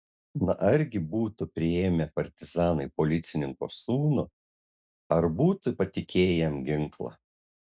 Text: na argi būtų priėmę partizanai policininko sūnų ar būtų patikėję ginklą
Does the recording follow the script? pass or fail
fail